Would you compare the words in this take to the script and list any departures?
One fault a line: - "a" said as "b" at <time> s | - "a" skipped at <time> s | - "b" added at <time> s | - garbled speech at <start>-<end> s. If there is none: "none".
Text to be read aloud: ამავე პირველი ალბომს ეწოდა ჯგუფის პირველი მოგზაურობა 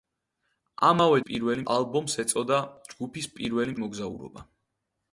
none